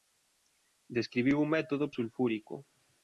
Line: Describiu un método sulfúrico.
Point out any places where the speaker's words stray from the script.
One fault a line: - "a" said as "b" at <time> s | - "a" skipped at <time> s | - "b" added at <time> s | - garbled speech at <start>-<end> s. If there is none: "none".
none